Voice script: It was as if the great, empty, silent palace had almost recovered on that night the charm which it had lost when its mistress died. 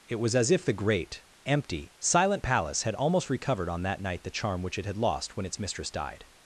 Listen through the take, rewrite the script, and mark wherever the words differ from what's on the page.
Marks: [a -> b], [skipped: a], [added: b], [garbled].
It was as if the great, empty, silent palace had almost recovered on that night the charm which it had lost when its mistress died.